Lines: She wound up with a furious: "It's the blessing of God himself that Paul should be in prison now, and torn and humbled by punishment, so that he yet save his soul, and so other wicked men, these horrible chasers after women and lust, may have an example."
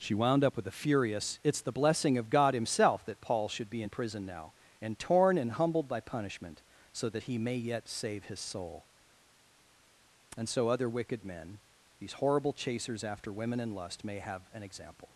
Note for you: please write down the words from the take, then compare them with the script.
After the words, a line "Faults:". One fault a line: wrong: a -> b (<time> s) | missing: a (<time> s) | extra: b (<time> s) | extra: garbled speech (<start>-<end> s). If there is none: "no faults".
She wound up with a furious: "It's the blessing of God himself that Paul should be in prison now, and torn and humbled by punishment, so that he may yet save his soul, and so other wicked men, these horrible chasers after women and lust, may have an example."
Faults:
extra: may (7.4 s)